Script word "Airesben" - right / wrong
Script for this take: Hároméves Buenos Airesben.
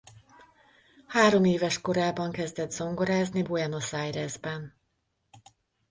right